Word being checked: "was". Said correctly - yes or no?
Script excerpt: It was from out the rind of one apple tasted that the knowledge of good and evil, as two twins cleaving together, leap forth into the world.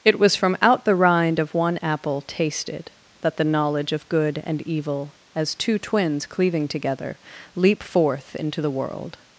yes